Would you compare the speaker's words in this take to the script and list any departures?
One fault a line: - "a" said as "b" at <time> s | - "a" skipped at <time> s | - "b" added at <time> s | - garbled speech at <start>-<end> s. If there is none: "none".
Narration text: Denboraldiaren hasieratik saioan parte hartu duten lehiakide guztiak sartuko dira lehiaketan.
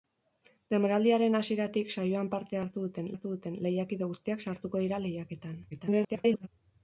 - "hartu duten" added at 3.1 s
- garbled speech at 5.7-6.5 s